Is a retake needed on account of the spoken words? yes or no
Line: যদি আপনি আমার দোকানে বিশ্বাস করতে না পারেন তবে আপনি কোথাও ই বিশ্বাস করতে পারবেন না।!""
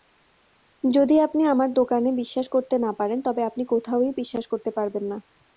no